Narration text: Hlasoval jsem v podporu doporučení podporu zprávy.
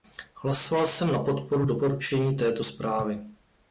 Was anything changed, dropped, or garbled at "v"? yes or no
yes